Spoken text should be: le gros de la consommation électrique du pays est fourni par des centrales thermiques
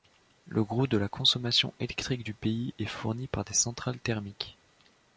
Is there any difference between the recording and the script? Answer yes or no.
no